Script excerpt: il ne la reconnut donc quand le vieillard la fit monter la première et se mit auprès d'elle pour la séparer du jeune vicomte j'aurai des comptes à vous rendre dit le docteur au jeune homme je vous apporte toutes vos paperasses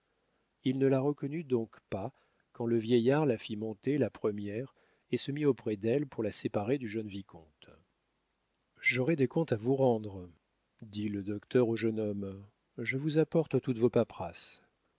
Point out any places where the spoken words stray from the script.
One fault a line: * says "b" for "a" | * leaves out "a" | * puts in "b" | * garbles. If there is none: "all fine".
* puts in "pas"